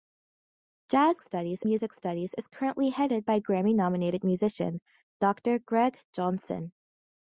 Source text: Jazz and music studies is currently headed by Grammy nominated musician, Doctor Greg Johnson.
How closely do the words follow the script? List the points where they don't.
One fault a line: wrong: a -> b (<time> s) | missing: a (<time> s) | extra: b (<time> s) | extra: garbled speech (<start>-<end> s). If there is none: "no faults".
wrong: and -> studies (1.2 s)